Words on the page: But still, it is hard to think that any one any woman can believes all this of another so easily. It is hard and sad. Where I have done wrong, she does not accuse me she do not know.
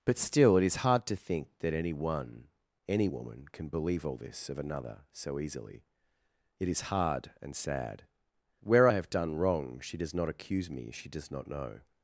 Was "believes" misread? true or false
true